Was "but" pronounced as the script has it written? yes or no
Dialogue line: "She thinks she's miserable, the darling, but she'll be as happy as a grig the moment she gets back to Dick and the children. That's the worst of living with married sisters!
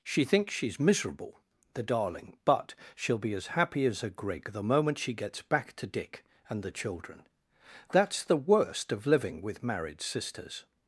yes